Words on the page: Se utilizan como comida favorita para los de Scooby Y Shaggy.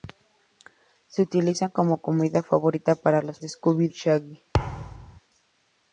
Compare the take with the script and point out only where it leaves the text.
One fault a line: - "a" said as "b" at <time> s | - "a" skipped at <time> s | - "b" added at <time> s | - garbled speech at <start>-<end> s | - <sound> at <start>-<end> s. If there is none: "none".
- thud at 4.5-5.2 s